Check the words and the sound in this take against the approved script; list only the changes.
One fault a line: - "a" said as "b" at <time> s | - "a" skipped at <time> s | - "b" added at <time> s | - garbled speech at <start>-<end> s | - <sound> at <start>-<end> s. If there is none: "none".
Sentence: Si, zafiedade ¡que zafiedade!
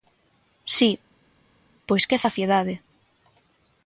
- "zafiedade" said as "pois" at 1.9 s